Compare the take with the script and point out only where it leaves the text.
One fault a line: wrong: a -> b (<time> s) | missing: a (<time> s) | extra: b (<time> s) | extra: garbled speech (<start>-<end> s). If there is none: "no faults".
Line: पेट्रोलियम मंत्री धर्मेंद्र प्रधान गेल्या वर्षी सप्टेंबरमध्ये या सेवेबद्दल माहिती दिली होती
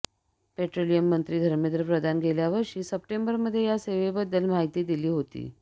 no faults